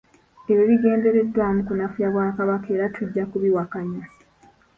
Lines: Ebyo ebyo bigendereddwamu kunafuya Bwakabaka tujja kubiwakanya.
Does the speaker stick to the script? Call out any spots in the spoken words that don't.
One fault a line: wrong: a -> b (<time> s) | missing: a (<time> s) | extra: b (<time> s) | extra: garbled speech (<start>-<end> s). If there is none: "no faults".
missing: ebyo (0.6 s)
extra: era (2.8 s)